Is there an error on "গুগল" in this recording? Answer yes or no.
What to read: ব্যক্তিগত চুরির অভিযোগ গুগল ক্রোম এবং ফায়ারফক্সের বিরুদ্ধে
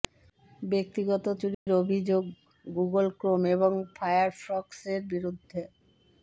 no